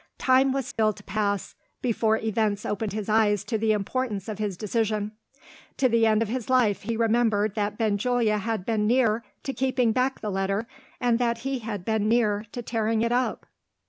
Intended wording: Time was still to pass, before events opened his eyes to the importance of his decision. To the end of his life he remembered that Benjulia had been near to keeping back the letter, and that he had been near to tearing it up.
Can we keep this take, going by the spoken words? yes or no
yes